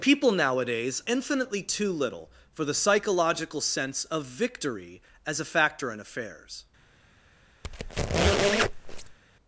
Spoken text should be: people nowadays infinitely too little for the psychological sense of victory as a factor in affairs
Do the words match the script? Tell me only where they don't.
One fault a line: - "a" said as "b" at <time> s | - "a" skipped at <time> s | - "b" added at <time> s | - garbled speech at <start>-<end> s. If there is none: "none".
none